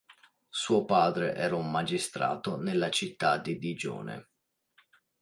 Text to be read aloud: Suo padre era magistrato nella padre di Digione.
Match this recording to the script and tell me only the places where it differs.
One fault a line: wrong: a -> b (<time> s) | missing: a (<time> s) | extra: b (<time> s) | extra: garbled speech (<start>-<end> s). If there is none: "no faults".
extra: un (1.6 s)
wrong: padre -> città (2.9 s)